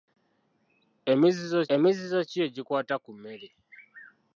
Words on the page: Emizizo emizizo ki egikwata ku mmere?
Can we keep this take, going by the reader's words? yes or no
yes